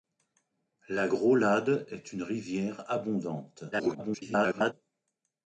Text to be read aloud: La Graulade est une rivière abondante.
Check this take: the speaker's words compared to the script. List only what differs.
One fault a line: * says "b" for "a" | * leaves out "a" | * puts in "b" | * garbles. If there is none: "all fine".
* garbles